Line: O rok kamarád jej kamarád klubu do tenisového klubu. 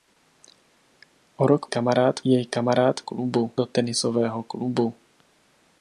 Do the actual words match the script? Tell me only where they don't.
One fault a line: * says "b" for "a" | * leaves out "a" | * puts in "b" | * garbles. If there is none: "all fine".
all fine